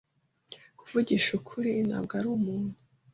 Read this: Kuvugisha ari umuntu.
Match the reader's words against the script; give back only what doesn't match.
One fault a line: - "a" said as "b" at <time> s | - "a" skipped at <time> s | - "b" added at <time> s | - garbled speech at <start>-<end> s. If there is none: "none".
- "ukuri ntabwo" added at 1.4 s